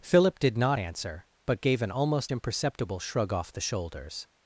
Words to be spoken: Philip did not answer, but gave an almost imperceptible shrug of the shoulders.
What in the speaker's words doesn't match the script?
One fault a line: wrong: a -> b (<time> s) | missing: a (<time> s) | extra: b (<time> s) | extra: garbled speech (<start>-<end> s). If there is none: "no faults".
wrong: of -> off (3.3 s)